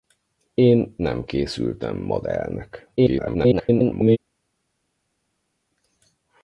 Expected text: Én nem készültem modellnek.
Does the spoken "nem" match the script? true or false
true